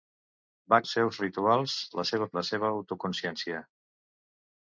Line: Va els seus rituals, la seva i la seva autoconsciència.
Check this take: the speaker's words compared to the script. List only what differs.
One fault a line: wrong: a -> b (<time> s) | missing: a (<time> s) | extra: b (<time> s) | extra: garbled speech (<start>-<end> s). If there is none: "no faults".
no faults